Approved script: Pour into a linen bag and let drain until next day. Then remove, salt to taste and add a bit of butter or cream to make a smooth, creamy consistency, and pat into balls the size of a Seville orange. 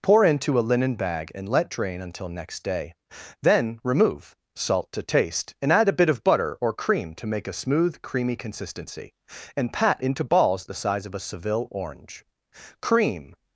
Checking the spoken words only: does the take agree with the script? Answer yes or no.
no